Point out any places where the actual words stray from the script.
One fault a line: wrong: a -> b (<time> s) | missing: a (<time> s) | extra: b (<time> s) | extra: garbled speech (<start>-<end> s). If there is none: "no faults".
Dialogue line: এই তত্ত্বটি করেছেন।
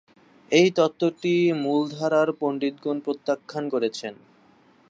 extra: মূলধারার পণ্ডিতগণ প্রত্যাখ্যান (1.6 s)